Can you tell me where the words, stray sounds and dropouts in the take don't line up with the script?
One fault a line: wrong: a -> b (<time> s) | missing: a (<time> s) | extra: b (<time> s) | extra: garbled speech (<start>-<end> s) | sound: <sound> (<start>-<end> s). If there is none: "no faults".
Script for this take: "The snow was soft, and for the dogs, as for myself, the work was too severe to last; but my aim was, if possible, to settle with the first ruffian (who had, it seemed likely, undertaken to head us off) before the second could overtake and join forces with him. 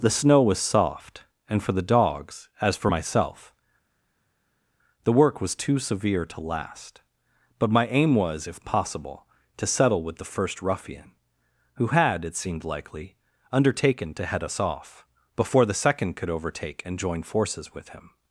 no faults